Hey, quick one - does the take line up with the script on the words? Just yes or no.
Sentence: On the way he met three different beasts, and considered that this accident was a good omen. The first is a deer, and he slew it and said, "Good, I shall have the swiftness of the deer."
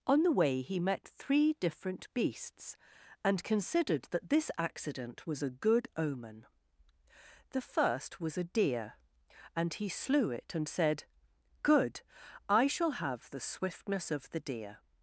no